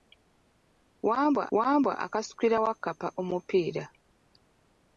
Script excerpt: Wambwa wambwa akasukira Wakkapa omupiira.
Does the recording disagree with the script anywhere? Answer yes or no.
no